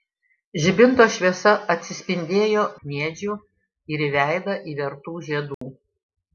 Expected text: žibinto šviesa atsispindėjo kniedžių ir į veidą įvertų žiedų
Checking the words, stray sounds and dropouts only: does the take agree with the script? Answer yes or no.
no